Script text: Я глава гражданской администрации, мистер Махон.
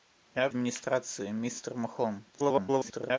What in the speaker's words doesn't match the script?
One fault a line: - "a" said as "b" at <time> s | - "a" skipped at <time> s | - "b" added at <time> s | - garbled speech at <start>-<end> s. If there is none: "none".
- "глава гражданской" skipped at 0.5 s
- garbled speech at 2.3-3.2 s